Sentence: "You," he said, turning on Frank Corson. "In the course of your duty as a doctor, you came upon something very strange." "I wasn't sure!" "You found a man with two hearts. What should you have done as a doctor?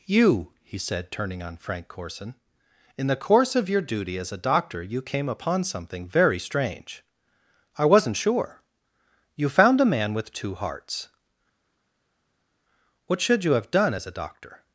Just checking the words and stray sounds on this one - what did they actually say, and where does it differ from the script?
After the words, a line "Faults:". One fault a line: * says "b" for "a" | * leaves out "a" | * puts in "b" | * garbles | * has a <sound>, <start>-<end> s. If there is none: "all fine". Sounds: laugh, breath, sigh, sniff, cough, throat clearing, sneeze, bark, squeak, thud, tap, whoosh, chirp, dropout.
"You," he said, turning on Frank Corson. "In the course of your duty as a doctor, you came upon something very strange." "I wasn't sure!" "You found a man with two hearts. What should you have done as a doctor?
Faults:
all fine